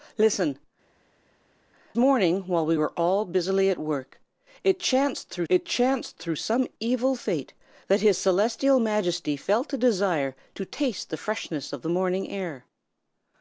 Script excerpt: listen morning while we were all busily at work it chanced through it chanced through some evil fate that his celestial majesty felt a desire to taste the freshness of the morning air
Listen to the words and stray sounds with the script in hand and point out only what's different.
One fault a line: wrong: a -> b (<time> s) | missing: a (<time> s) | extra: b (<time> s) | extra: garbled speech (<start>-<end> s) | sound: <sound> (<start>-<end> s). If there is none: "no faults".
no faults